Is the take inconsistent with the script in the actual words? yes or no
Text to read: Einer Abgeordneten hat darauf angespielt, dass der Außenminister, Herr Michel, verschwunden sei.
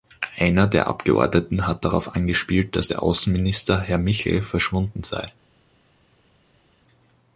yes